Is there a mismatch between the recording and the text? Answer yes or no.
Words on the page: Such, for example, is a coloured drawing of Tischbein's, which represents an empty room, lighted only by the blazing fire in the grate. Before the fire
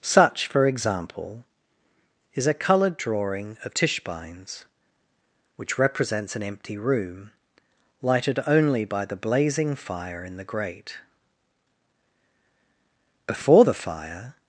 no